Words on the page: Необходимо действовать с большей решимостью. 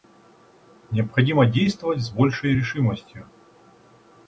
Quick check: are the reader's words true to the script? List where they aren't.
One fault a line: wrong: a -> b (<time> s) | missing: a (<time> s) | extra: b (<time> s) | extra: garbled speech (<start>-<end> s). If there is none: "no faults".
no faults